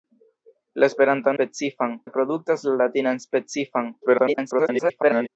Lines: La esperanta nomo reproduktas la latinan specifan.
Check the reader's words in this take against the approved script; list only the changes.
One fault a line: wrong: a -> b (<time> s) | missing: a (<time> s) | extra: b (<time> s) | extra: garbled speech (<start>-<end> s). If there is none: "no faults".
wrong: nomo -> specifan (1.4 s)
extra: garbled speech (4.0-5.3 s)